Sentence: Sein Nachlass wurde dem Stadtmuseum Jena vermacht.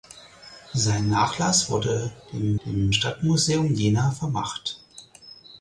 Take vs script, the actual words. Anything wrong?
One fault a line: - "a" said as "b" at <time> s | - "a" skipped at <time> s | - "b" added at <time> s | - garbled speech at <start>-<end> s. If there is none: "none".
- "dem" added at 2.7 s